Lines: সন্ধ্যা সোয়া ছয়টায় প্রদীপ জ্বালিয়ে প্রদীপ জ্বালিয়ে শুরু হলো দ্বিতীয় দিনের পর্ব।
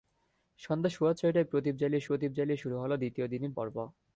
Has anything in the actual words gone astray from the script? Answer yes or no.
no